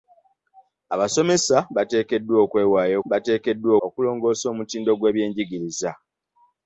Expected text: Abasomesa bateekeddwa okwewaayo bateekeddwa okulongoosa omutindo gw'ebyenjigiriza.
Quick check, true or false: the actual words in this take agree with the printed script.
true